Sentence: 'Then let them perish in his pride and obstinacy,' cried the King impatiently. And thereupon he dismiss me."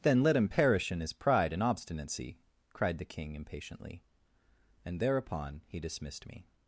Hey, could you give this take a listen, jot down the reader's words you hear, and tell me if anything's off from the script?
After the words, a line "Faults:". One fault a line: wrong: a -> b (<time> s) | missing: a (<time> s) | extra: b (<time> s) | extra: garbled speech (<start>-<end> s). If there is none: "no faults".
'Then let him perish in his pride and obstinacy,' cried the King impatiently. And thereupon he dismissed me."
Faults:
wrong: them -> him (0.3 s)
wrong: dismiss -> dismissed (5.8 s)